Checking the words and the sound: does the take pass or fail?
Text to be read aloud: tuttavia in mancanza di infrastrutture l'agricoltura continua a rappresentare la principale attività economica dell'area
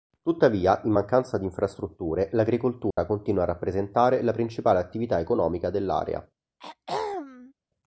fail